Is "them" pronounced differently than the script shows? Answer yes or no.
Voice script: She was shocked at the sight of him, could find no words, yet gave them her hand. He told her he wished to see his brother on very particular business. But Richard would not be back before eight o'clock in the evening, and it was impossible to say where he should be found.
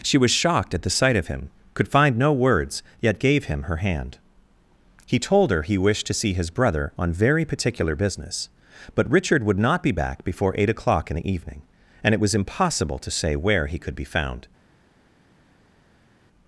yes